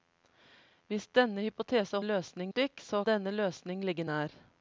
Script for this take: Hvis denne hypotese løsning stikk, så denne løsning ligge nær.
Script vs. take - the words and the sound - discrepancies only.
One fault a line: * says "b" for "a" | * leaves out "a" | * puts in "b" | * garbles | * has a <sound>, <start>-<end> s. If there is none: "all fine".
all fine